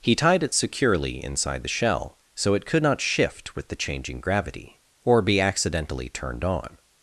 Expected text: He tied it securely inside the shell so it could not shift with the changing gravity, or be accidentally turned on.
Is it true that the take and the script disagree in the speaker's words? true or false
false